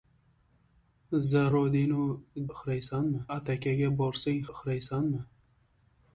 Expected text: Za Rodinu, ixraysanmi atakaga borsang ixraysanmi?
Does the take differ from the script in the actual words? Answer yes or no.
no